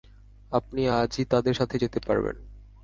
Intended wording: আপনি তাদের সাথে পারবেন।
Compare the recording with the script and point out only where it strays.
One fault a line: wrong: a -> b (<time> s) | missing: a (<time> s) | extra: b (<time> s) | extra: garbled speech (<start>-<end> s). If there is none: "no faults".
extra: আজই (1.0 s)
extra: যেতে (1.8 s)